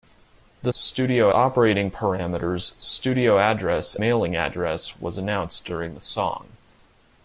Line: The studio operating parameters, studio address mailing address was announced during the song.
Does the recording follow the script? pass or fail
pass